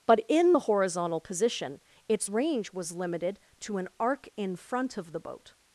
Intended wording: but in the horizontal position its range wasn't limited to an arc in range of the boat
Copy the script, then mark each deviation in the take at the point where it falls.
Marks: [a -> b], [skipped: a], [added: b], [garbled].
but in the horizontal position its range [wasn't -> was] limited to an arc in [range -> front] of the boat